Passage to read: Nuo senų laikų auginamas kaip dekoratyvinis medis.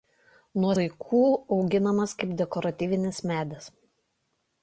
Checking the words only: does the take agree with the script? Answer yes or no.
no